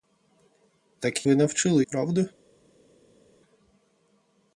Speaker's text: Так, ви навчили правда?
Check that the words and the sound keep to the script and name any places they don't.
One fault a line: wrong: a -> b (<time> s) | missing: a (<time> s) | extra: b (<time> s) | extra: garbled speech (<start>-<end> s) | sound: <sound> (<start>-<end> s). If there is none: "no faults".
no faults